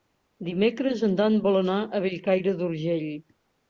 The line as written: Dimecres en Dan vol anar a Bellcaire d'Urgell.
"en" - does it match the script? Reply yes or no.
yes